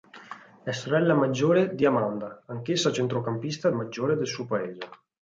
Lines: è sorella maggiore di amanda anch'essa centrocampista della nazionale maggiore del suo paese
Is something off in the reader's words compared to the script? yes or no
yes